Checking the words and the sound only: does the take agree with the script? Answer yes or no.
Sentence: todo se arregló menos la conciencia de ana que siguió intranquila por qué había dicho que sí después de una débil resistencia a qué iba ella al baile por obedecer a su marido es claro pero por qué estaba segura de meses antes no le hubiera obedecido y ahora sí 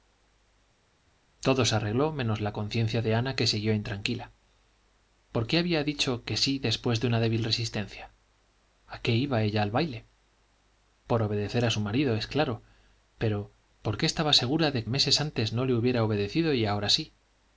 yes